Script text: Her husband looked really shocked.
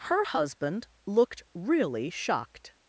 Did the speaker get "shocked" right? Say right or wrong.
right